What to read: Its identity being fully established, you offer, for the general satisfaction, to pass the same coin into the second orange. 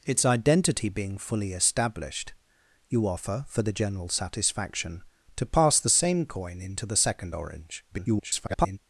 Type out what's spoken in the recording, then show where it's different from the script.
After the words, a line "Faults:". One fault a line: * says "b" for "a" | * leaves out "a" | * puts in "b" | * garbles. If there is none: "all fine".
Its identity being fully established, you offer, for the general satisfaction, to pass the same coin into the second orange. [garbled]
Faults:
* garbles